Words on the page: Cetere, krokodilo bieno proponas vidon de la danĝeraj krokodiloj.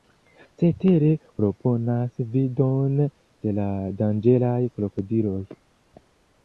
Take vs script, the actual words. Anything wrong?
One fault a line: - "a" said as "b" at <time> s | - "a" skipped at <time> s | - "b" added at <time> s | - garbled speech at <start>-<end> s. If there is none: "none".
- "krokodilo bieno" skipped at 1.1 s